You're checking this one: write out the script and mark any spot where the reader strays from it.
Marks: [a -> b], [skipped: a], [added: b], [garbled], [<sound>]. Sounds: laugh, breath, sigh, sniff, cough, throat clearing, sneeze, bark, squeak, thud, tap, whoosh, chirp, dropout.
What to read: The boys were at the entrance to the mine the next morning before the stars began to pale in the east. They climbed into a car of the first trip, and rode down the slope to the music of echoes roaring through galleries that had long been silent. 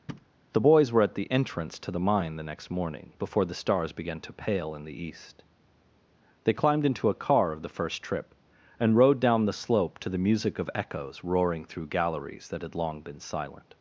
[thud] The boys were at the entrance to the mine the next morning before the stars began to pale in the east. They climbed into a car of the first trip, and rode down the slope to the music of echoes roaring through galleries that had long been silent.